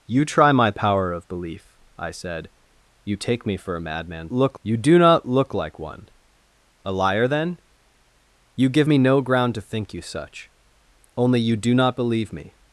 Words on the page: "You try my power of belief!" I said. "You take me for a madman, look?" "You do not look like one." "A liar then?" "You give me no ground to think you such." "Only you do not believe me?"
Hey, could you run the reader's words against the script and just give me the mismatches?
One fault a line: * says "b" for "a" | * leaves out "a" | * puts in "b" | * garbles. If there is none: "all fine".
all fine